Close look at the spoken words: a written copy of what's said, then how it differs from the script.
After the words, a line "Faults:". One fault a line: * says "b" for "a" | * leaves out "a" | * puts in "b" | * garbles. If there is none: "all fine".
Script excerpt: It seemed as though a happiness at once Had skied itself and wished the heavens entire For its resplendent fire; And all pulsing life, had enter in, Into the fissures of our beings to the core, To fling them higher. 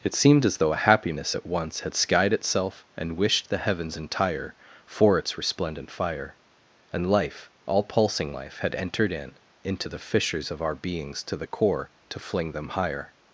It seemed as though a happiness at once Had skied itself and wished the heavens entire For its resplendent fire; And life, all pulsing life, had entered in, Into the fissures of our beings to the core, To fling them higher.
Faults:
* puts in "life"
* says "entered" for "enter"